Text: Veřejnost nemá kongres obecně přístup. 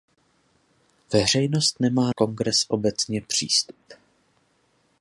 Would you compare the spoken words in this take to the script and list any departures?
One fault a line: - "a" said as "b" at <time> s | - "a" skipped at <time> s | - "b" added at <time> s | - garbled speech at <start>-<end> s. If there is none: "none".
none